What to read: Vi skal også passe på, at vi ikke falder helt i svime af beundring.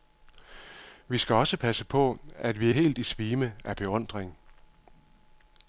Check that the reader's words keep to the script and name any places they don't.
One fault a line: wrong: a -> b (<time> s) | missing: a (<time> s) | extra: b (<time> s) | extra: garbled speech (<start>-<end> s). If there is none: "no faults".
missing: ikke falder (2.7 s)